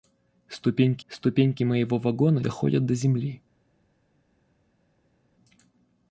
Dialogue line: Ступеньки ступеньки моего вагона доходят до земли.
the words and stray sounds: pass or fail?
pass